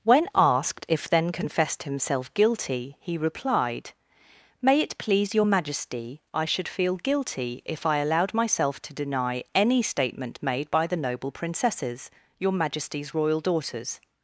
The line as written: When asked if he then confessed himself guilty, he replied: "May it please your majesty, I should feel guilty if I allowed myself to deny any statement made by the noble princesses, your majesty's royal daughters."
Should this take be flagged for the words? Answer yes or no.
yes